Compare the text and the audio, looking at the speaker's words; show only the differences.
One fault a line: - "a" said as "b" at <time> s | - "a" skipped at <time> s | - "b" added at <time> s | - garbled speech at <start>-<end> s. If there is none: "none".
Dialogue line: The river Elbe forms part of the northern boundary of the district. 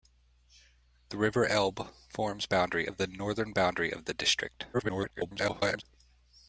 - "part" said as "boundary" at 2.5 s
- garbled speech at 4.7-5.8 s